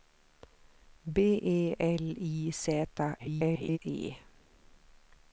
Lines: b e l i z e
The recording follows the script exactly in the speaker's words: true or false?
false